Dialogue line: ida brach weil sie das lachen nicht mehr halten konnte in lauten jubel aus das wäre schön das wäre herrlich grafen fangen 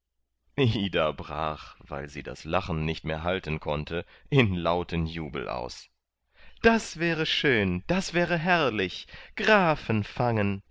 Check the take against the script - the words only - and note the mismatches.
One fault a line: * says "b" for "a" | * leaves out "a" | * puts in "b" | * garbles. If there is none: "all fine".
all fine